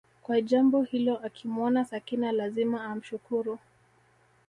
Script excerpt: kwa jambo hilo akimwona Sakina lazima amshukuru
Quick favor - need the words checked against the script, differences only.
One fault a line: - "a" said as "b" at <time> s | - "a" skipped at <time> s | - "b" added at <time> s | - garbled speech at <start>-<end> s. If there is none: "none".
none